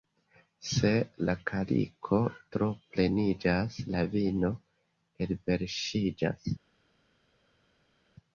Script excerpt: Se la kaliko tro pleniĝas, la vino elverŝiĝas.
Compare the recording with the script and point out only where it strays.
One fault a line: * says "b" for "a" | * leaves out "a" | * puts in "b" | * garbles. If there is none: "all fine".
all fine